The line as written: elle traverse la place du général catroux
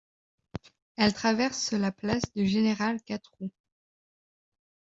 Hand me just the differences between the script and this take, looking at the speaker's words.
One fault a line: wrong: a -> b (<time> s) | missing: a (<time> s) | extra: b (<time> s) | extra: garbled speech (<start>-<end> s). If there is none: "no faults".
no faults